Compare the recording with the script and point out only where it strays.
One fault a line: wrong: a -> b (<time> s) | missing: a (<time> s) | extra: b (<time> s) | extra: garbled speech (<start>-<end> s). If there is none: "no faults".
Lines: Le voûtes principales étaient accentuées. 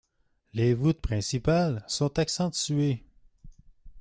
wrong: Le -> Les (0.5 s)
wrong: étaient -> sont (1.9 s)